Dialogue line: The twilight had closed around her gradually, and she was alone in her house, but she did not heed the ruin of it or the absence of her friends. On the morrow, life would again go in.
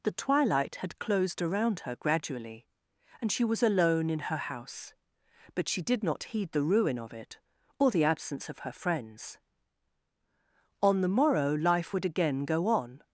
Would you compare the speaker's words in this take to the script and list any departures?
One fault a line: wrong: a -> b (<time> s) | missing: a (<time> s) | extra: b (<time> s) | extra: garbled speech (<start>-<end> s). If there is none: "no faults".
wrong: in -> on (12.7 s)